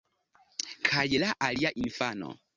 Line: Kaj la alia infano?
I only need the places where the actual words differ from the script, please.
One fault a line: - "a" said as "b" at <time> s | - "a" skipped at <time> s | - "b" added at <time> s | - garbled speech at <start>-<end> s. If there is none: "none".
none